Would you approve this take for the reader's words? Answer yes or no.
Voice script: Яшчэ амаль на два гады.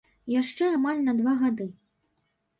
yes